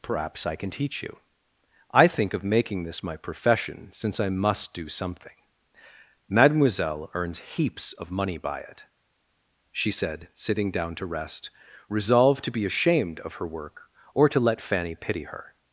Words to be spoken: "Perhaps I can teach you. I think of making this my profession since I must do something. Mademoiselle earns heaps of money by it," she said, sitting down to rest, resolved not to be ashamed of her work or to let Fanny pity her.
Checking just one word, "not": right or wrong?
wrong